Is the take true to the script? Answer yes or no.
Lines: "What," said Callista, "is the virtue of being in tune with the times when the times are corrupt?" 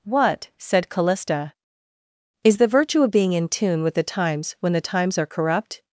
yes